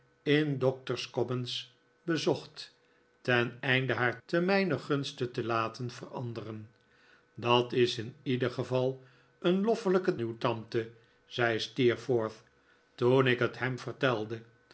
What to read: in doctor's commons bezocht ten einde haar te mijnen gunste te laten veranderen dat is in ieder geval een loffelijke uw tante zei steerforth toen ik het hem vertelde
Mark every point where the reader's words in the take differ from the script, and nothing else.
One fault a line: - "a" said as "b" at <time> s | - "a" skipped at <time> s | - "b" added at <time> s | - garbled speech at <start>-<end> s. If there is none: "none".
none